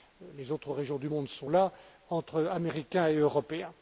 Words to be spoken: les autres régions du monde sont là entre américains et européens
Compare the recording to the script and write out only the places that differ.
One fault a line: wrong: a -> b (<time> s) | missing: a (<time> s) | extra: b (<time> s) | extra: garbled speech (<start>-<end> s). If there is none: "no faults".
no faults